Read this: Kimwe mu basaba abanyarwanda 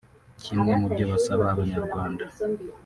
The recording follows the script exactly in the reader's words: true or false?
false